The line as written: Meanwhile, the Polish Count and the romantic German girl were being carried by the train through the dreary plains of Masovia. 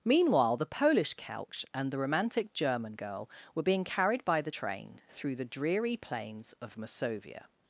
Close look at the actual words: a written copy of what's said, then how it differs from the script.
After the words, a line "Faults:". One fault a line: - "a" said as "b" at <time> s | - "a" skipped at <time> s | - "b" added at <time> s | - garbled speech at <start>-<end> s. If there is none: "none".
Meanwhile, the Polish Couch and the romantic German girl were being carried by the train through the dreary plains of Masovia.
Faults:
- "Count" said as "Couch" at 1.1 s